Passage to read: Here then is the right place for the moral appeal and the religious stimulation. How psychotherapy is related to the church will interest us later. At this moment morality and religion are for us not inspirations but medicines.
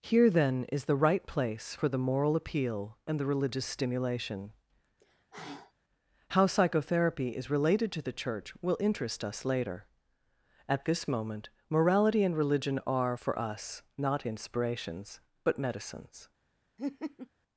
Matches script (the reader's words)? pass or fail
pass